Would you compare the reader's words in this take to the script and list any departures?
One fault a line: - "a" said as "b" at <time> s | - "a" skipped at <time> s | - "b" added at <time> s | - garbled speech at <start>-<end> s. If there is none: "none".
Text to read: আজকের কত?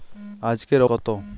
none